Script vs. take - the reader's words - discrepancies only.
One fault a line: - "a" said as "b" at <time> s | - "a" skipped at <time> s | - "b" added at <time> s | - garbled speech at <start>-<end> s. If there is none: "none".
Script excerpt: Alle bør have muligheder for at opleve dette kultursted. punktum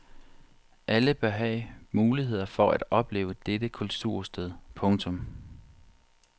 none